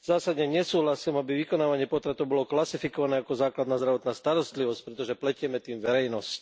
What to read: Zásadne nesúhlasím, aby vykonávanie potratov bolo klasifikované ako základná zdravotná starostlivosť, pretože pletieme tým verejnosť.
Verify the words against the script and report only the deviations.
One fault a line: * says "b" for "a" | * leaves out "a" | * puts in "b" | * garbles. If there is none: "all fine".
all fine